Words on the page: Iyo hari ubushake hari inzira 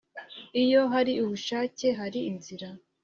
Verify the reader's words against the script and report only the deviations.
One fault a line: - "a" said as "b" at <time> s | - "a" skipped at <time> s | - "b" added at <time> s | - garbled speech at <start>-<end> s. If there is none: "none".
none